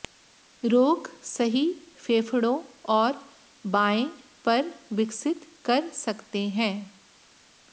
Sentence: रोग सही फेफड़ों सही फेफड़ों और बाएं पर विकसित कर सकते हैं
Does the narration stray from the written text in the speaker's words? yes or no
yes